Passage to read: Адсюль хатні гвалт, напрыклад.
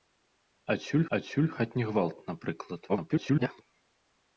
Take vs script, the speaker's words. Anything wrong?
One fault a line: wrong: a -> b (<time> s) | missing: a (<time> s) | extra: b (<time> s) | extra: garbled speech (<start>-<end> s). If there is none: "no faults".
extra: адсюль (1.2 s)
extra: garbled speech (2.9-3.6 s)